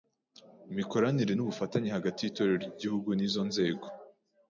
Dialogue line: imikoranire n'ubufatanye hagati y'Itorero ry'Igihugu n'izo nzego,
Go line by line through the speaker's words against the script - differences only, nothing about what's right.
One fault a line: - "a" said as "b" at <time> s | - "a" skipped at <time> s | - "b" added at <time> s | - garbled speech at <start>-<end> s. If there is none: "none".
none